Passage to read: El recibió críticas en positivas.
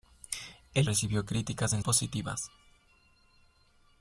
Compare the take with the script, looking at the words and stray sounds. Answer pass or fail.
pass